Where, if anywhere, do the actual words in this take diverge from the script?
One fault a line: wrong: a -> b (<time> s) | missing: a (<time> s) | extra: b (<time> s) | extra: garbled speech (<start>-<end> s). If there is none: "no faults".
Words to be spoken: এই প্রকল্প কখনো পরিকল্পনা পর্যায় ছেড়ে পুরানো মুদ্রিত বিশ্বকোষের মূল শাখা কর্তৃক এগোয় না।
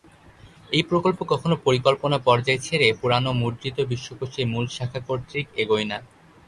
no faults